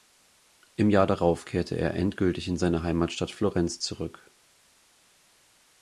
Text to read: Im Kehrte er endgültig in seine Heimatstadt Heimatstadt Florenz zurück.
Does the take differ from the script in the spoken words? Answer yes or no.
yes